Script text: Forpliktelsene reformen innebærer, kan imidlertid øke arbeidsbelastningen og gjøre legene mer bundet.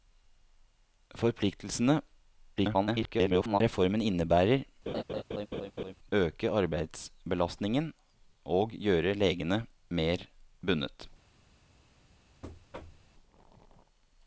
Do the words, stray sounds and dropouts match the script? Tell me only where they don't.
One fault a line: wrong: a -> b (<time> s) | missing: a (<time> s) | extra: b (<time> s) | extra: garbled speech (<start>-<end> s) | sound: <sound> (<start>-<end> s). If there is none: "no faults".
extra: garbled speech (2.6-3.6 s)
missing: kan imidlertid (4.6 s)
sound: laugh (4.9-5.9 s)
sound: thud (12.4-13.1 s)